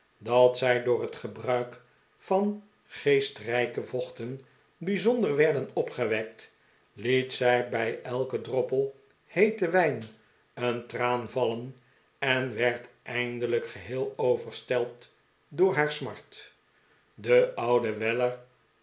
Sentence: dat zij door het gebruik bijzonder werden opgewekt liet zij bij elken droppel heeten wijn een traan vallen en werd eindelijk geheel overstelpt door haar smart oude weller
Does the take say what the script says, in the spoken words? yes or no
no